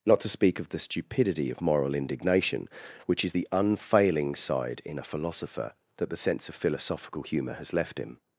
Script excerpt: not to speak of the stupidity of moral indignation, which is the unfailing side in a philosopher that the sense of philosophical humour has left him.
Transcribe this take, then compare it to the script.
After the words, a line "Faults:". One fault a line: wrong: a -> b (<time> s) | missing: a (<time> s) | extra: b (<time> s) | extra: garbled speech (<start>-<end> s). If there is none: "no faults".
not to speak of the stupidity of moral indignation, which is the unfailing side in a philosopher that the sense of philosophical humour has left him.
Faults:
no faults